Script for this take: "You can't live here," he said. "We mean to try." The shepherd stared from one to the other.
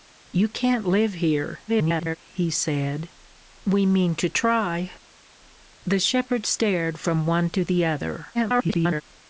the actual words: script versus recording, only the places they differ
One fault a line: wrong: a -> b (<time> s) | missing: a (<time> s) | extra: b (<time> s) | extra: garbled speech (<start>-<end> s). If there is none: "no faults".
extra: garbled speech (1.7-2.2 s)
extra: garbled speech (8.3-9.0 s)